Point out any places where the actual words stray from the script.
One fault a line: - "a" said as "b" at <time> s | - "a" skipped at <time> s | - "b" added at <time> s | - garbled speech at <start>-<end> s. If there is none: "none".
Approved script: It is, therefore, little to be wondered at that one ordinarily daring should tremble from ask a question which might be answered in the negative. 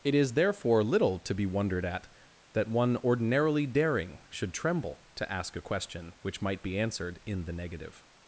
- "from" said as "to" at 5.2 s